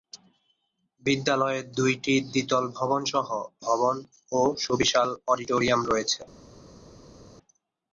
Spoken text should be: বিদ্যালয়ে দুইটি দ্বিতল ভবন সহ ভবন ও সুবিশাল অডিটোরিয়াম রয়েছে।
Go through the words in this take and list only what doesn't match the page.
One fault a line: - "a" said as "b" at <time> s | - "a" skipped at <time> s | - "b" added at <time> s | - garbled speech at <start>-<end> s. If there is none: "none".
none